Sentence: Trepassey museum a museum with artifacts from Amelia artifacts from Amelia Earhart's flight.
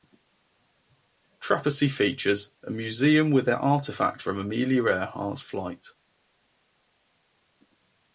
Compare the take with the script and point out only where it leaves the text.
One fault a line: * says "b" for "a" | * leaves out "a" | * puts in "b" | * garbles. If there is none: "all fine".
* says "features" for "museum"
* leaves out "artifacts from Amelia"